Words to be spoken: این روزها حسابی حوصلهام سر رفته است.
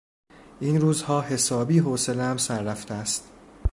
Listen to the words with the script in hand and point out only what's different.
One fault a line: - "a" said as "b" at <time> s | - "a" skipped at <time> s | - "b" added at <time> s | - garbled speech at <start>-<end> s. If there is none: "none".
none